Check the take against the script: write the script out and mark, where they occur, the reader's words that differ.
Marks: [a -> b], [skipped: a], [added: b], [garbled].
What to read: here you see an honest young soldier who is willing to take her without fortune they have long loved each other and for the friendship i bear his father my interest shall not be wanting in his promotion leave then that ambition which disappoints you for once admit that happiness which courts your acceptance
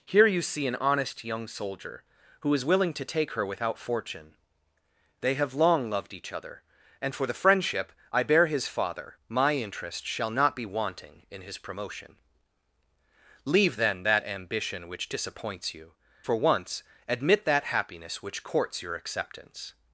here you see an honest young soldier who is willing to take her without fortune they have long loved each other and for the friendship i bear his father my interest shall not be wanting in his promotion leave then that ambition which disappoints you for once admit that happiness which courts your acceptance